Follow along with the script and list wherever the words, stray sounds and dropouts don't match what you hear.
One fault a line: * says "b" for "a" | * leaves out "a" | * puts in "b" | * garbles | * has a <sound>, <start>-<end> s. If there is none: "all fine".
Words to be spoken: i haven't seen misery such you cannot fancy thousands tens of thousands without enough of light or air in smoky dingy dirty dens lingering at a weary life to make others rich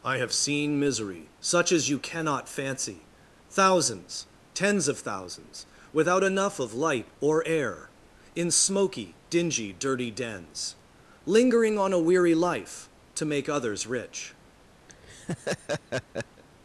* says "have" for "haven't"
* puts in "as"
* says "on" for "at"
* has a laugh, 14.9-16.4 s